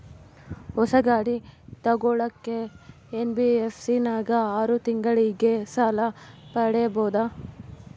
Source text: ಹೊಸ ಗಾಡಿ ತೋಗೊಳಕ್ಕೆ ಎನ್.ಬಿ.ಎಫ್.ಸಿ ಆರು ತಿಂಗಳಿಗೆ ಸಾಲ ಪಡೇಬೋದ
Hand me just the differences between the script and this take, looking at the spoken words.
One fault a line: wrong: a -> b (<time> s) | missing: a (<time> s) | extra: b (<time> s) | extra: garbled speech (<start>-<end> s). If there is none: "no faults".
extra: ನಾಗ (4.1 s)